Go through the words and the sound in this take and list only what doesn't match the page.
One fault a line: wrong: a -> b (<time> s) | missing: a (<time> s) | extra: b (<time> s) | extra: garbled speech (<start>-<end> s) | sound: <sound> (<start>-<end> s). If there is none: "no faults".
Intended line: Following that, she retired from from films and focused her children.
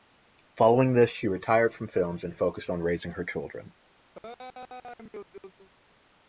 wrong: that -> this (0.9 s)
missing: from (1.9 s)
extra: on raising (2.7 s)
sound: laugh (4.2-5.7 s)